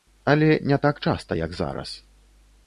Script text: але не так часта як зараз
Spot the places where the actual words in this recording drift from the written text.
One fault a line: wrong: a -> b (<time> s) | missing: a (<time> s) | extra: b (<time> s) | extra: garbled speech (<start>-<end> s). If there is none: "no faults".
no faults